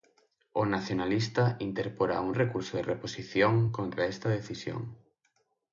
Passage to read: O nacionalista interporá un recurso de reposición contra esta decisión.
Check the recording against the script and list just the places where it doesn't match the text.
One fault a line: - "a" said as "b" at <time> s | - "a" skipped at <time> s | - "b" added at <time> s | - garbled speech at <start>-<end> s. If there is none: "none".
none